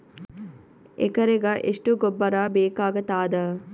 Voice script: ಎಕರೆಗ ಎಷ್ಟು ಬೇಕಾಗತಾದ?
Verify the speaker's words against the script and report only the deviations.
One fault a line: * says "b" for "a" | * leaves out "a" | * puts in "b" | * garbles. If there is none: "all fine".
* puts in "ಗೊಬ್ಬರ"